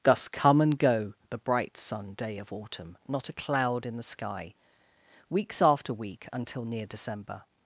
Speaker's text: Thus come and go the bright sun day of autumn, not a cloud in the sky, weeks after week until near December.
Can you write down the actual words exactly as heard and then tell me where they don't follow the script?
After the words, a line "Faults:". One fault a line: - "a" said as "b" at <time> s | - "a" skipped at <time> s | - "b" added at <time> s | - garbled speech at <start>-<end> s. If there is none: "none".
Thus come and go the bright sun day of autumn, not a cloud in the sky, weeks after week until near December.
Faults:
none